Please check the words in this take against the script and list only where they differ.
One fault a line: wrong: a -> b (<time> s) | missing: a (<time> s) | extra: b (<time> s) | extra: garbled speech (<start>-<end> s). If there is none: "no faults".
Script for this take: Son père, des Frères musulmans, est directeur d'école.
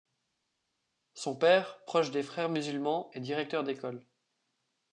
extra: proche (1.8 s)